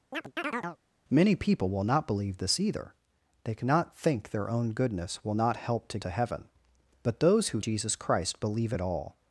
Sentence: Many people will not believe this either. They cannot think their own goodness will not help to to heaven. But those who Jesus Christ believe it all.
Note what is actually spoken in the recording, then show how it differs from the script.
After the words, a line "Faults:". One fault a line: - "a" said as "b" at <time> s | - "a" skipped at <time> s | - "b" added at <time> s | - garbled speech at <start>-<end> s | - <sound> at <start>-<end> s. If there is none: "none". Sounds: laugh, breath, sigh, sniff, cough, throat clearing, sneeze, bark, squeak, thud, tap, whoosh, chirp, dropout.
Many people will not believe this either. They cannot think their own goodness will not help to to heaven. But those who Jesus Christ believe it all.
Faults:
- chirp at 0.1-0.8 s